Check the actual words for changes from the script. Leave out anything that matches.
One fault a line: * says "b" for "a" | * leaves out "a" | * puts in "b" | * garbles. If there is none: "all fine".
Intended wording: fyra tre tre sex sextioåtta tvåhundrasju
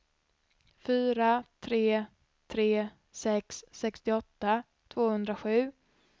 all fine